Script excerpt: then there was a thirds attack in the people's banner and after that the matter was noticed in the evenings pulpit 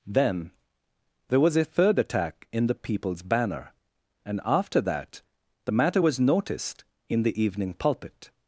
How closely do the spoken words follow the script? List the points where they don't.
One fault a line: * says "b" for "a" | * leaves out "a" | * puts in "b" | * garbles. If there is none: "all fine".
* says "third" for "thirds"
* says "evening" for "evenings"